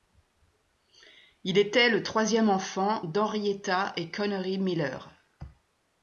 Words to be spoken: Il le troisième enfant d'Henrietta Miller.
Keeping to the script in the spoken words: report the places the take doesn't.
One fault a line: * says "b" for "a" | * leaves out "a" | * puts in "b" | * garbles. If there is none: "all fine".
* puts in "était"
* puts in "et Connery"